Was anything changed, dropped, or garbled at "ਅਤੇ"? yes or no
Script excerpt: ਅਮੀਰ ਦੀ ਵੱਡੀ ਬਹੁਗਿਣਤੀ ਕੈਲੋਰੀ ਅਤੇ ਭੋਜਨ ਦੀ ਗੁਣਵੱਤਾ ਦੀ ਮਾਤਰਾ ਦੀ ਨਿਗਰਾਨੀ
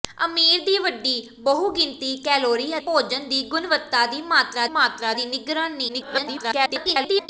yes